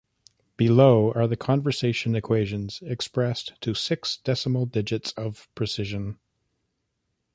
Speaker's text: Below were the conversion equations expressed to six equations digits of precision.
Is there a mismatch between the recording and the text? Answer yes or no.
yes